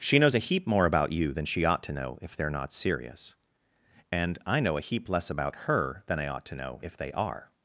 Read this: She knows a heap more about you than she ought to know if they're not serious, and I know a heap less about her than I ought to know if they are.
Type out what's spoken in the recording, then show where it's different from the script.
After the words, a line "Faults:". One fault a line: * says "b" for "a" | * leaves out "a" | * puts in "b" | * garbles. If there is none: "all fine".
She knows a heap more about you than she ought to know if they're not serious, and I know a heap less about her than I ought to know if they are.
Faults:
all fine